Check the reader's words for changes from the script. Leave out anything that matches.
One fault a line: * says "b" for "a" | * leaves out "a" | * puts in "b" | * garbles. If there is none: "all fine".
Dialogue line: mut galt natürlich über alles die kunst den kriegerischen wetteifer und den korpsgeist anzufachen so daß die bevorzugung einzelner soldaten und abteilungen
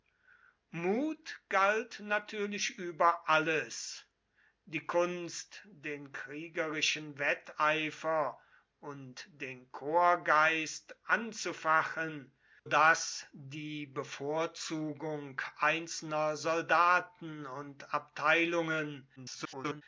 * leaves out "so"
* garbles